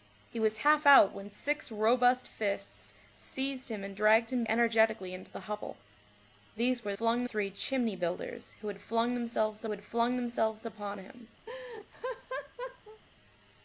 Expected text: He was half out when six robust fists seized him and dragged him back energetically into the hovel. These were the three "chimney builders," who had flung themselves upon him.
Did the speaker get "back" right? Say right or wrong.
wrong